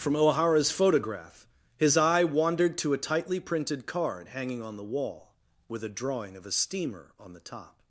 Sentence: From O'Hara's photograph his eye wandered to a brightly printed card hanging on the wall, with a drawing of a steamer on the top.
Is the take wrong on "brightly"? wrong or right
wrong